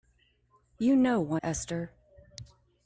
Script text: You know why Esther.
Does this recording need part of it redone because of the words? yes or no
no